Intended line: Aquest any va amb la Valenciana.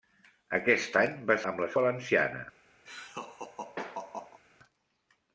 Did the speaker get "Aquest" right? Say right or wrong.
right